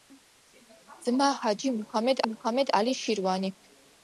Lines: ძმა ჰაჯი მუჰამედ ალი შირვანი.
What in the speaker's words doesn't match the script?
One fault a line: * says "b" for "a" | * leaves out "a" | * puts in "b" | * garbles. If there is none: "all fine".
* puts in "მუჰამედ"